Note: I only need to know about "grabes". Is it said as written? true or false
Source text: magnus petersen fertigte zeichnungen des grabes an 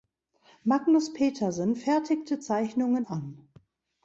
false